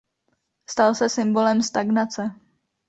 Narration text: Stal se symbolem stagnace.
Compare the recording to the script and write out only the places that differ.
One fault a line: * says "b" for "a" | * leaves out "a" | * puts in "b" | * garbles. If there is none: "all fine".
all fine